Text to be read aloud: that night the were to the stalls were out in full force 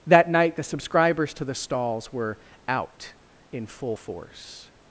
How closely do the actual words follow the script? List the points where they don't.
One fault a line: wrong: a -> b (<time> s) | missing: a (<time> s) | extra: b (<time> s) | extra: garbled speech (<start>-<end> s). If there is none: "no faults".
wrong: were -> subscribers (0.6 s)